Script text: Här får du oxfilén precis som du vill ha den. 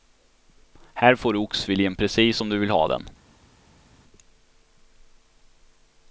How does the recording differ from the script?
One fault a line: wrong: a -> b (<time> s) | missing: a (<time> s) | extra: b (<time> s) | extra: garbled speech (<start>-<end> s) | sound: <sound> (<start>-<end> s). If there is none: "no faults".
no faults